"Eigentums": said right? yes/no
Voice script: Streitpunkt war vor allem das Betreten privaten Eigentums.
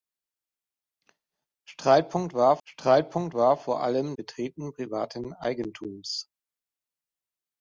yes